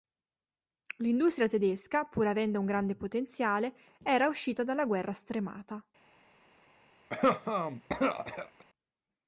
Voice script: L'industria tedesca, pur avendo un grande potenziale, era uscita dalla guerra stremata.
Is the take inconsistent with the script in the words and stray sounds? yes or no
yes